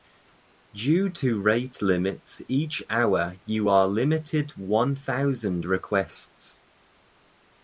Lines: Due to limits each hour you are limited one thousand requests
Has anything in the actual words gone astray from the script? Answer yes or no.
yes